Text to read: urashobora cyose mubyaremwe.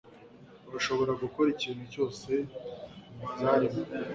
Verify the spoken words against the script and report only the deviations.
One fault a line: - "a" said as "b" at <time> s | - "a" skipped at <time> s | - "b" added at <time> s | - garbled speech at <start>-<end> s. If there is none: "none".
- "gukora ikintu" added at 1.2 s